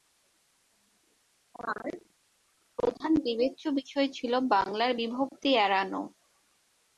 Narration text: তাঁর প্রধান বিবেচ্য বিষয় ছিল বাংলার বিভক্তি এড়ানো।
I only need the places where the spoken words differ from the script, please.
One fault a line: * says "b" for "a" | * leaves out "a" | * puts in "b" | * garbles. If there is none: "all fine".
all fine